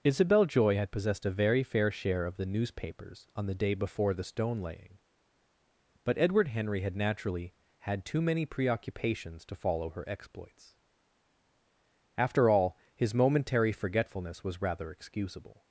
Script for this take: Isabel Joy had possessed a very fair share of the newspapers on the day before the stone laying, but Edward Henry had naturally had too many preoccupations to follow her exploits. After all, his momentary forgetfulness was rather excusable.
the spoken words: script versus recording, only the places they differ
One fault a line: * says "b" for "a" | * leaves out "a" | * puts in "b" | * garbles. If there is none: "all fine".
all fine